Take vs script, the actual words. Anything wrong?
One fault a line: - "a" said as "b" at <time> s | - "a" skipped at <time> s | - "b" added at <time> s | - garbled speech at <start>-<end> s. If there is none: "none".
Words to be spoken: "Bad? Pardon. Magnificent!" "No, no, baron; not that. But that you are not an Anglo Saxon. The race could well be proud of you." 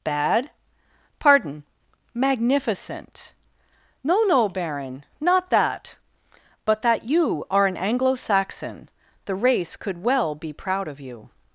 - "not" skipped at 7.7 s